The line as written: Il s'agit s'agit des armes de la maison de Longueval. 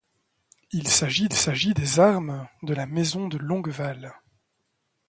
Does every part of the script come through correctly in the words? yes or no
yes